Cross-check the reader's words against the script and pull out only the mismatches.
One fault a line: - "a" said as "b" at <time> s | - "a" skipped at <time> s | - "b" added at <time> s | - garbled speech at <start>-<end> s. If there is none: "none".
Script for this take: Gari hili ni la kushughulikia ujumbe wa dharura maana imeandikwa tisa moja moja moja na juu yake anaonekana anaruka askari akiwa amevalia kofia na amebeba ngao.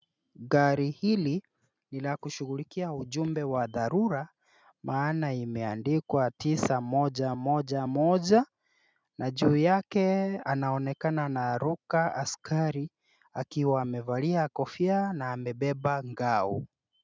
none